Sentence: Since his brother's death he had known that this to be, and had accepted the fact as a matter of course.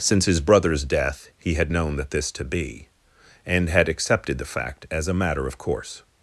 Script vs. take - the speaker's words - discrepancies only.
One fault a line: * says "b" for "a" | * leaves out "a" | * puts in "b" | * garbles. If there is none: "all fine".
all fine